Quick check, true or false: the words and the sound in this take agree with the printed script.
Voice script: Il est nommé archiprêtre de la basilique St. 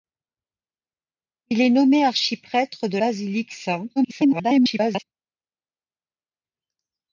false